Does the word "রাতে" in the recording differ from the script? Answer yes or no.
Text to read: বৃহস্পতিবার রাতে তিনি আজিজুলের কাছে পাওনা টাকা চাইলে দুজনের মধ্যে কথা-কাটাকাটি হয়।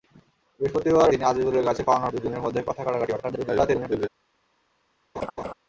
yes